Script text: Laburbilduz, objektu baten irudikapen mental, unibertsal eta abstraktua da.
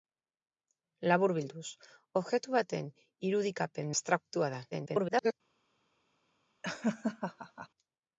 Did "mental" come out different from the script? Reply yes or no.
yes